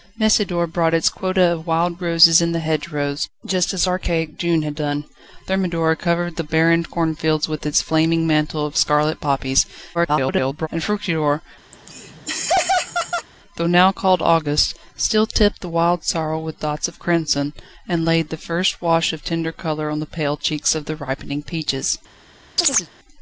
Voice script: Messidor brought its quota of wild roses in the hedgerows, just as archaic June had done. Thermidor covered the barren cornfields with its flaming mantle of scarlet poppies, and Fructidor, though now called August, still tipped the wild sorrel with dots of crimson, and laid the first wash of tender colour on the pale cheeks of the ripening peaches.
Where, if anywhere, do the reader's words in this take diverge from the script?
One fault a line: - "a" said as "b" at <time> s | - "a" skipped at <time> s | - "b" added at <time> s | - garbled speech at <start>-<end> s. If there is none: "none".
- garbled speech at 9.9-10.7 s